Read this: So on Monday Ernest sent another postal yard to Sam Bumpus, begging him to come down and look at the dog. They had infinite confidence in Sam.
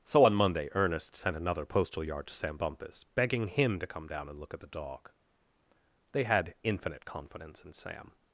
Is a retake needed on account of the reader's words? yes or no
no